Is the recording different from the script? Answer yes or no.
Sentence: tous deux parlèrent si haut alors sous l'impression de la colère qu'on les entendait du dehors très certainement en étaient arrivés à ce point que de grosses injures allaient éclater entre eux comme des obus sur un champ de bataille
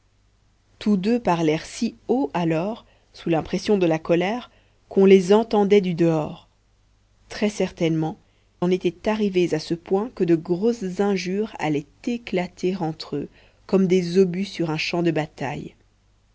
no